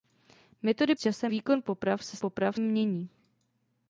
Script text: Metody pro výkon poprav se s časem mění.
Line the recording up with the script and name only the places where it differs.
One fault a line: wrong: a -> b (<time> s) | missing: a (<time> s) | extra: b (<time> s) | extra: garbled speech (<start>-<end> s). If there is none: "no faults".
wrong: pro -> časem (1.0 s)
wrong: časem -> poprav (2.2 s)